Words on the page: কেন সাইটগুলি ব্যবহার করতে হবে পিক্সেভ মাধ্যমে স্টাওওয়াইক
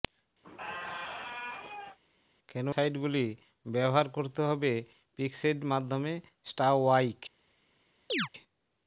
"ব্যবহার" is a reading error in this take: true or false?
false